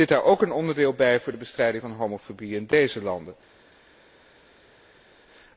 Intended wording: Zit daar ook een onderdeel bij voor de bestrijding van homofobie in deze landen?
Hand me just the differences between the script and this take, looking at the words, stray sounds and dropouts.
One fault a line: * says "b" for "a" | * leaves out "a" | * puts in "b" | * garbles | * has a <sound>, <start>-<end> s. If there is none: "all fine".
all fine